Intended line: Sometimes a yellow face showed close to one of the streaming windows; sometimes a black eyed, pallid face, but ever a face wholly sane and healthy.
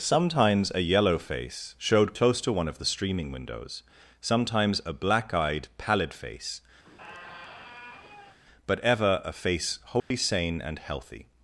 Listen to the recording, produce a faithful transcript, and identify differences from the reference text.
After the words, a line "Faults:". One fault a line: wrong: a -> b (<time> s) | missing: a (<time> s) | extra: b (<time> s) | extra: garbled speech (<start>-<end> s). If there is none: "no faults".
Sometimes a yellow face showed close to one of the streaming windows; sometimes a black eyed, pallid face, but ever a face wholly sane and healthy.
Faults:
no faults